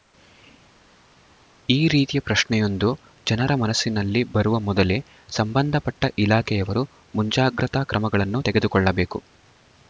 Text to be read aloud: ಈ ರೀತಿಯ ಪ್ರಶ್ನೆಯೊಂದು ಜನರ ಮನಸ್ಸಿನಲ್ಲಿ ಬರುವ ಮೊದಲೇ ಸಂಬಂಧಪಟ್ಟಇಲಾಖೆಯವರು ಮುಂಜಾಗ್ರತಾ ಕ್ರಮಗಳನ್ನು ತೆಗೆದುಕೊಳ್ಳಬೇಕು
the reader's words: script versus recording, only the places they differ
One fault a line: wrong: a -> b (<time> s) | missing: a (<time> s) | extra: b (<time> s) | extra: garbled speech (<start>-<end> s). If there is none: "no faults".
no faults